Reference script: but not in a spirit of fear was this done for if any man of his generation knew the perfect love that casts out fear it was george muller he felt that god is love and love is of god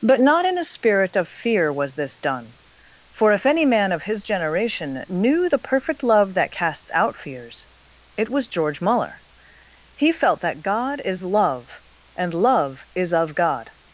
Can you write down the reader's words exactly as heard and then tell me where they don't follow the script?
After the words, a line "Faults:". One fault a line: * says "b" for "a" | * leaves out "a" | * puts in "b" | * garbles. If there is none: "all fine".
but not in a spirit of fear was this done for if any man of his generation knew the perfect love that casts out fears it was george muller he felt that god is love and love is of god
Faults:
* says "fears" for "fear"